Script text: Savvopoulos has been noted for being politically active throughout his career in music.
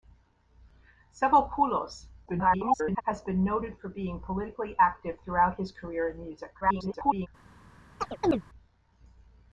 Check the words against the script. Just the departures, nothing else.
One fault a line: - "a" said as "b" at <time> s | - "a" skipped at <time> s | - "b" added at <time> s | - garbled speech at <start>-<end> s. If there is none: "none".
- garbled speech at 2.3-3.0 s
- garbled speech at 6.6-7.3 s